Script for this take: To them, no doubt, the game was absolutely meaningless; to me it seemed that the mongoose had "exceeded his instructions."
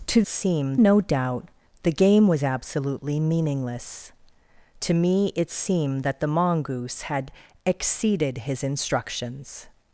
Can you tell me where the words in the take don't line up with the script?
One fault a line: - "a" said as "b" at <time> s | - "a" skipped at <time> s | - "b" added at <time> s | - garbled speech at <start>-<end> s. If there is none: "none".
- "them" said as "seemed" at 0.3 s